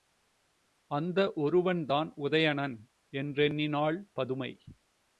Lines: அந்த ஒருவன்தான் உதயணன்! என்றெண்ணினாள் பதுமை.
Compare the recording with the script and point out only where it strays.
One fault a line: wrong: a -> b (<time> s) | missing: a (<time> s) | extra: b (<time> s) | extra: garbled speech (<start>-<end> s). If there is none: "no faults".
no faults